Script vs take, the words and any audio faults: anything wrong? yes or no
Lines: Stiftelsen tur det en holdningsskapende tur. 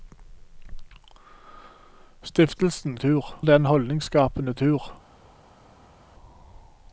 no